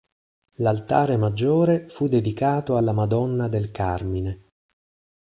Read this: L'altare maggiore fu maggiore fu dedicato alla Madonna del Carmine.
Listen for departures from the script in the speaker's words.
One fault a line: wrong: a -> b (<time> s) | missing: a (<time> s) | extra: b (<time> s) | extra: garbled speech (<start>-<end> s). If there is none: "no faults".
missing: maggiore fu (2.1 s)